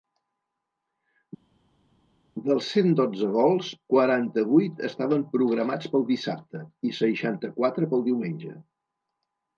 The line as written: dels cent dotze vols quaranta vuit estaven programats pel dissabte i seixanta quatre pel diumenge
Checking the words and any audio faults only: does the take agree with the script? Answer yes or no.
yes